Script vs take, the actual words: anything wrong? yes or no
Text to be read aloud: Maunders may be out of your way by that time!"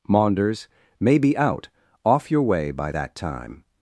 yes